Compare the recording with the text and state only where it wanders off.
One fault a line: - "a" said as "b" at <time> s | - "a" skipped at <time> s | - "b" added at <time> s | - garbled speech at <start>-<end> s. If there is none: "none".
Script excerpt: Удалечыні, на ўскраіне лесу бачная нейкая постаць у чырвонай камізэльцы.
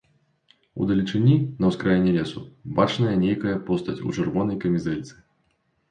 none